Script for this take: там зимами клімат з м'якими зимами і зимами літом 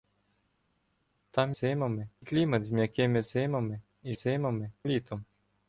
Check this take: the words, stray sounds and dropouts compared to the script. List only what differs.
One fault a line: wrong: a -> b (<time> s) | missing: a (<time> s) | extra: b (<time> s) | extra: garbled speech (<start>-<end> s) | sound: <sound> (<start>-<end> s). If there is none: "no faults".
no faults